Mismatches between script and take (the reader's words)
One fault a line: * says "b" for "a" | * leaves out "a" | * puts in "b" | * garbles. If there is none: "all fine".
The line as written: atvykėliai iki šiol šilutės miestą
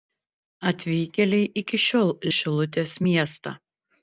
all fine